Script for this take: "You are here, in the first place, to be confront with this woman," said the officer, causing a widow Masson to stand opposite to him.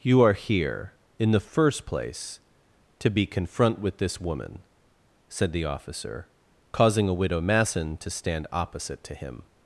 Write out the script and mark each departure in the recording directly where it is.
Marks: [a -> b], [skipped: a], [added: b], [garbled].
"You are here, in the first place, to be confront with this woman," said the officer, causing a widow Masson to stand opposite to him.